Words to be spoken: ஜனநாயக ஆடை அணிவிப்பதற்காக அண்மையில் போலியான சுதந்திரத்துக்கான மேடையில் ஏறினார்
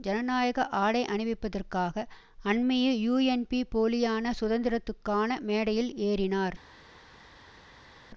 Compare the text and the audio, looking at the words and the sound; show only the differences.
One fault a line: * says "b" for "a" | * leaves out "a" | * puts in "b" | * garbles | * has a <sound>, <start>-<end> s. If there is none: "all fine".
* puts in "யூஎன்பி"